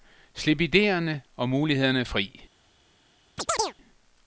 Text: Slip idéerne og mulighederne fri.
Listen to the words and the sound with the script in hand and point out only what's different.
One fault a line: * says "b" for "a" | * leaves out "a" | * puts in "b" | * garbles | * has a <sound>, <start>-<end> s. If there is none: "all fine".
* has a chirp, 3.4-3.7 s